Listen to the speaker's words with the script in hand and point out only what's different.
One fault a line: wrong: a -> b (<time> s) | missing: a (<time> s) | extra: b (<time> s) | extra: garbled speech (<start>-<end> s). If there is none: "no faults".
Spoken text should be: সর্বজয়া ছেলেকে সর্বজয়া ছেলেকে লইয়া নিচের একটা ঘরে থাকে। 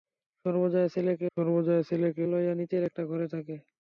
no faults